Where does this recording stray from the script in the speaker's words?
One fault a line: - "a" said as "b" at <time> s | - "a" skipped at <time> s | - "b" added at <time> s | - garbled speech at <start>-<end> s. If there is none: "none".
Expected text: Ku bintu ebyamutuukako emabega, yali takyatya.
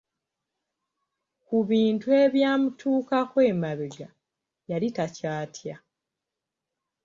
none